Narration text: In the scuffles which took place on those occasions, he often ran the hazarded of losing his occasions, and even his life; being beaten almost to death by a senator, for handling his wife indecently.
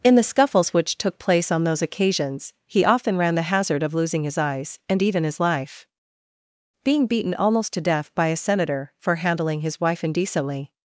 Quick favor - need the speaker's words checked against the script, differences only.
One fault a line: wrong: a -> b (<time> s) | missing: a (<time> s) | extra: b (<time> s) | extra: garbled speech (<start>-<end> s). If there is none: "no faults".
wrong: hazarded -> hazard (3.4 s)
wrong: occasions -> eyes (4.4 s)